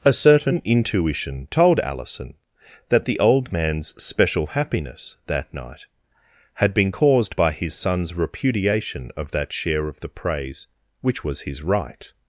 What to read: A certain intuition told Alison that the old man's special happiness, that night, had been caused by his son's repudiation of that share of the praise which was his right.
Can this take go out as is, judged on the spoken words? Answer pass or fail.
pass